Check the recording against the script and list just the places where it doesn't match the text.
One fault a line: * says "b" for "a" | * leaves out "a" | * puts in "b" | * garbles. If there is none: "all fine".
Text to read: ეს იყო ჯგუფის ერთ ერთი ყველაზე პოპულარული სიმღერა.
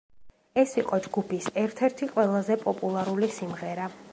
all fine